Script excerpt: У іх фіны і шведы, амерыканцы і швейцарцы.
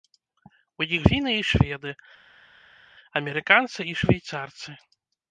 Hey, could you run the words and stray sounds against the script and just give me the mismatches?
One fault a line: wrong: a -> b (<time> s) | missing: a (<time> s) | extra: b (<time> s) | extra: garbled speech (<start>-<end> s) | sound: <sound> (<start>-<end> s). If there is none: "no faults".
no faults